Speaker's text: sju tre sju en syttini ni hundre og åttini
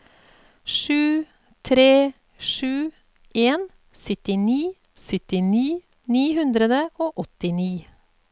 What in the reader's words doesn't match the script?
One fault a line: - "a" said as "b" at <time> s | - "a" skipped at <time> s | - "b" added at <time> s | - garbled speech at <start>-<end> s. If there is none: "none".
- "syttini" added at 5.1 s